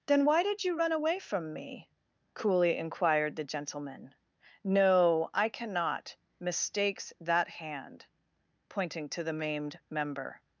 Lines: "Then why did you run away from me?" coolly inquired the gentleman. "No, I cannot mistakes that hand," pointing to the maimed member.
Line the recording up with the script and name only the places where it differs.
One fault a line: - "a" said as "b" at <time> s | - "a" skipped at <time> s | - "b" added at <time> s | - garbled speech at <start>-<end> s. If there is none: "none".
none